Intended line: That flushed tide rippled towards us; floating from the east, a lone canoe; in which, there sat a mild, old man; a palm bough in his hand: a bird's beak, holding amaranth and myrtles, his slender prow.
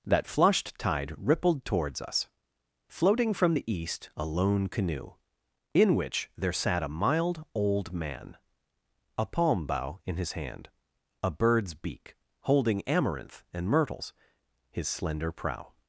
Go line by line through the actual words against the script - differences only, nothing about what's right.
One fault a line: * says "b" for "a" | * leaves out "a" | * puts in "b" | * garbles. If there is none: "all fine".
all fine